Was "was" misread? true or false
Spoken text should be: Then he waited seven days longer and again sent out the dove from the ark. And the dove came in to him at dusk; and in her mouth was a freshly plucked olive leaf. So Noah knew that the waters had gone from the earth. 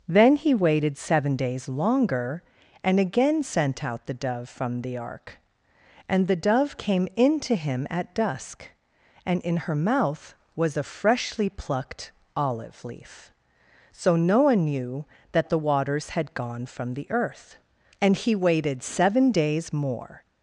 false